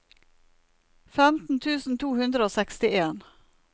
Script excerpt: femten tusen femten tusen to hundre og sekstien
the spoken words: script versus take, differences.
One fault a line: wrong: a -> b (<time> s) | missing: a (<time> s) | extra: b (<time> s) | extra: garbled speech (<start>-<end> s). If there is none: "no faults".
missing: femten tusen (2.0 s)